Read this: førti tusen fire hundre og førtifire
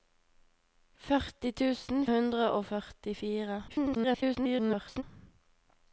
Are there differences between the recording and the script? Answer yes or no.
yes